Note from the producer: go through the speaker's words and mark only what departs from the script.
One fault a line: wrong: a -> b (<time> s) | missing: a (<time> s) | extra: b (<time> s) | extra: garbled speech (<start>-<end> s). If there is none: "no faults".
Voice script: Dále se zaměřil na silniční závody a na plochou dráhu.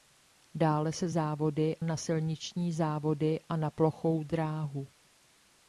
wrong: zaměřil -> závody (1.1 s)